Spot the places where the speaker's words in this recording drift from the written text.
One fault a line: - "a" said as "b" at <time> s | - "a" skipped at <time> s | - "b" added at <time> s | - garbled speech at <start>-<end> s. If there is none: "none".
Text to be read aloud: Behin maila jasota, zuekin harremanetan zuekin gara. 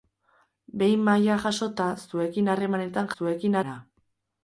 none